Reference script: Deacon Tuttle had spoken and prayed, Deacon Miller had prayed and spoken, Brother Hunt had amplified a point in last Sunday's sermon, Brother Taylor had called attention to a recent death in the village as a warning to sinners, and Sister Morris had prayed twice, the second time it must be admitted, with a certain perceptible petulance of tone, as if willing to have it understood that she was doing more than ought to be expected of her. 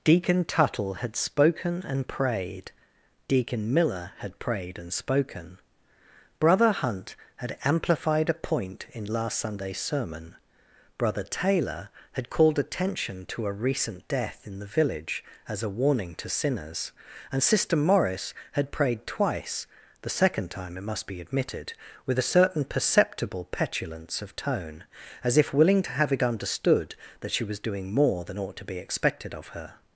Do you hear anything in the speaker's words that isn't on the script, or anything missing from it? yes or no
no